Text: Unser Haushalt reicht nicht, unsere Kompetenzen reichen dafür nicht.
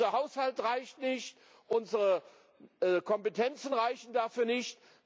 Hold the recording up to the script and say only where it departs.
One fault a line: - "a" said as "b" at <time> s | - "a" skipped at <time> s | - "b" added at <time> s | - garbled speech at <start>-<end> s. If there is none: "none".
none